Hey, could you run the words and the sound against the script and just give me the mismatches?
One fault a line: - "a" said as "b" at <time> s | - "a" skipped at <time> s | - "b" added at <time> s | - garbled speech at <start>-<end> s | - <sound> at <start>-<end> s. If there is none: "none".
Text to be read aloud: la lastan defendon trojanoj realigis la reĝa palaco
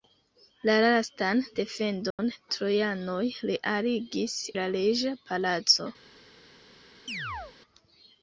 - dropout at 2.1-2.2 s
- chirp at 7.1-7.6 s